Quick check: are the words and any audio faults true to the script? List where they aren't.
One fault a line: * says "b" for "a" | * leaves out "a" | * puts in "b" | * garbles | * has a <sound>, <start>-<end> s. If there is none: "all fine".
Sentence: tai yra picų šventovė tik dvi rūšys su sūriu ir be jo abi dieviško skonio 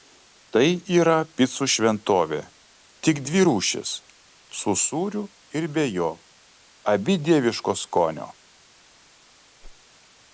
* has a whoosh, 9.6-9.8 s